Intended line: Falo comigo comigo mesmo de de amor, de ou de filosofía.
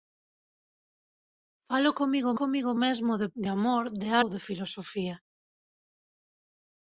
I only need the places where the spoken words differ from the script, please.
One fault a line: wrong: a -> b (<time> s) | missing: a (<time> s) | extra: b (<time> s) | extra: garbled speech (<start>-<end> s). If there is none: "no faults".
no faults